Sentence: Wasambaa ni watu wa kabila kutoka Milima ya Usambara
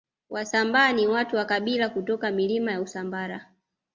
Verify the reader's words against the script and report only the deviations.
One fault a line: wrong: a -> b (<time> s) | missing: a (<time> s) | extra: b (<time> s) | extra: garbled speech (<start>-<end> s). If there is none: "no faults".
no faults